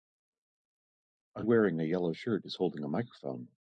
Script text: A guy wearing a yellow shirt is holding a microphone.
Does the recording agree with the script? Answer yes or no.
no